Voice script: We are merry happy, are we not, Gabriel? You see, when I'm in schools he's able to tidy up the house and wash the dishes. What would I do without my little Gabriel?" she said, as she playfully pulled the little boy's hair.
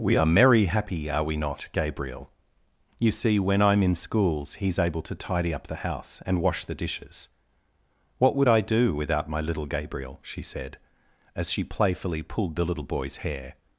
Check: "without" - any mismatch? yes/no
no